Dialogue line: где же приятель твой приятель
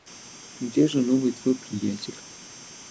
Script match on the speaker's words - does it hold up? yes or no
no